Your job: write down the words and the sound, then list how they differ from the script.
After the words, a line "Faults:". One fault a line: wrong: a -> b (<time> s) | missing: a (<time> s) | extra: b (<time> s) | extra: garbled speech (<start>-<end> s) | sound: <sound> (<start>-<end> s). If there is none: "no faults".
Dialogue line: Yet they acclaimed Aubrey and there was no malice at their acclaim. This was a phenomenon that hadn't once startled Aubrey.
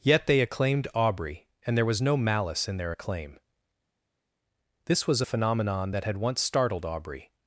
Yet they acclaimed Aubrey and there was no malice in their acclaim. This was a phenomenon that had once startled Aubrey.
Faults:
wrong: at -> in (2.7 s)
wrong: hadn't -> had (6.0 s)